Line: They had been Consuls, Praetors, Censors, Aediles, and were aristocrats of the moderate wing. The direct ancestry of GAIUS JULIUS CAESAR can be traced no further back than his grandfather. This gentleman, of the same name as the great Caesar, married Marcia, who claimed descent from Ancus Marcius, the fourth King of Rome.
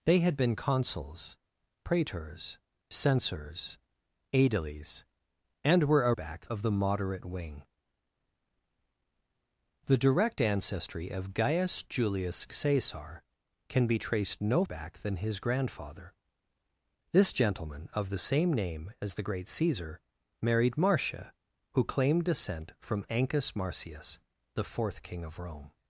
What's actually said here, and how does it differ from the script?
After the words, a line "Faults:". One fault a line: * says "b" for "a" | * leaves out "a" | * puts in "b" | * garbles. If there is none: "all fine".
They had been Consuls, Praetors, Censors, Aediles, and were back of the moderate wing. The direct ancestry of GAIUS JULIUS CAESAR can be traced no back than his grandfather. This gentleman, of the same name as the great Caesar, married Marcia, who claimed descent from Ancus Marcius, the fourth King of Rome.
Faults:
* says "back" for "aristocrats"
* leaves out "further"